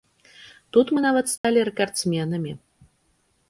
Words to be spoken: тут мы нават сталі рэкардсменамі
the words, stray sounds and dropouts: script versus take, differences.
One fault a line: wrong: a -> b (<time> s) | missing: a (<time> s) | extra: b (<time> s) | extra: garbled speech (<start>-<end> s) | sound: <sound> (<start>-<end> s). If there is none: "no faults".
sound: dropout (1.4-1.4 s)